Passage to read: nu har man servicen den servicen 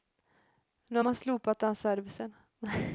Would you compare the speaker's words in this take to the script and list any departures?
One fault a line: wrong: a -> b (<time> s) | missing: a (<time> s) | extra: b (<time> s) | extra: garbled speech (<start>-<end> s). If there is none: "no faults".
wrong: servicen -> slopat (1.2 s)